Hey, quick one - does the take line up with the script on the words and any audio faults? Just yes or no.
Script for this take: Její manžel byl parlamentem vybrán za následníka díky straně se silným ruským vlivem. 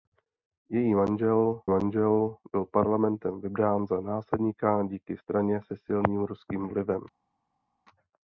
no